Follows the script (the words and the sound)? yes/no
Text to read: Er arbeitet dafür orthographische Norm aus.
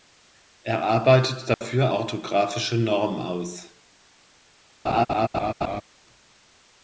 no